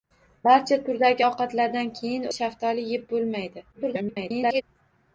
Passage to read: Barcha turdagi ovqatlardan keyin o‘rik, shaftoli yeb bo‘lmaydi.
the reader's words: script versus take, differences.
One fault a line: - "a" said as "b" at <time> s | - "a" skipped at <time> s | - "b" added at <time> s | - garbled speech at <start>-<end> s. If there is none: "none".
- "o‘rik" skipped at 2.3 s
- garbled speech at 3.7-4.6 s